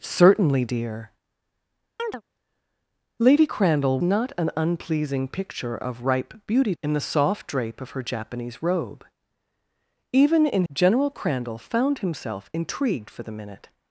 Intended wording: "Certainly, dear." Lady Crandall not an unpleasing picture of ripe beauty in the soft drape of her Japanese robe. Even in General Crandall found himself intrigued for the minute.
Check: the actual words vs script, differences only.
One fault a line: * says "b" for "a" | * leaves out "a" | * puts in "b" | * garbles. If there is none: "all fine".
all fine